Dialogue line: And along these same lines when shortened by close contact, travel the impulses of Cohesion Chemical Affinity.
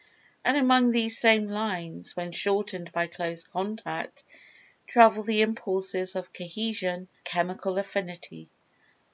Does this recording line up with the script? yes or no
yes